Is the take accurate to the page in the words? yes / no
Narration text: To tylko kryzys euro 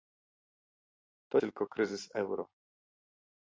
yes